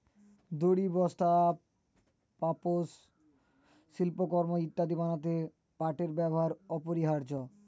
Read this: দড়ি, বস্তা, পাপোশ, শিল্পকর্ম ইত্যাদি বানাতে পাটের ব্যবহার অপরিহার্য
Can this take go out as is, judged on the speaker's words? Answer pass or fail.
pass